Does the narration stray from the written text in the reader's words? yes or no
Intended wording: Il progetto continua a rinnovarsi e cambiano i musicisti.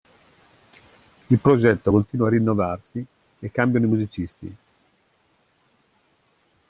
no